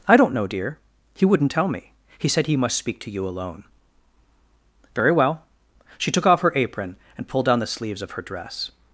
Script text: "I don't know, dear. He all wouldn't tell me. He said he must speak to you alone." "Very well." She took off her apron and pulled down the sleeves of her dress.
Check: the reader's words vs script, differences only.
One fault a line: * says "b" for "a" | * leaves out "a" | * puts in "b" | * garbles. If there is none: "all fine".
* leaves out "all"